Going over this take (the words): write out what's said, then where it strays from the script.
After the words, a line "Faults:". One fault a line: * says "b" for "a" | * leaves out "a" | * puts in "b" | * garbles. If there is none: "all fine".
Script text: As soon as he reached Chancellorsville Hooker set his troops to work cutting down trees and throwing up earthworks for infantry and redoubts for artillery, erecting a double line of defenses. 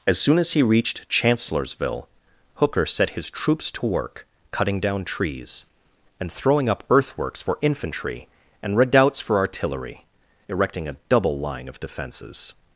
As soon as he reached Chancellorsville Hooker set his troops to work cutting down trees and throwing up earthworks for infantry and redoubts for artillery, erecting a double line of defenses.
Faults:
all fine